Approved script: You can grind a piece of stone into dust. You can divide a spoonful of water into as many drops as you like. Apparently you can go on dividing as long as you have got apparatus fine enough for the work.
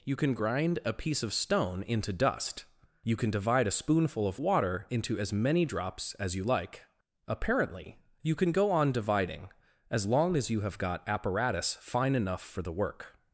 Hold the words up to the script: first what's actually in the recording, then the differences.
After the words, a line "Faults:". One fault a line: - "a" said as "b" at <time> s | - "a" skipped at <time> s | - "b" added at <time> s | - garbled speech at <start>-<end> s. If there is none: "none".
You can grind a piece of stone into dust. You can divide a spoonful of water into as many drops as you like. Apparently you can go on dividing as long as you have got apparatus fine enough for the work.
Faults:
none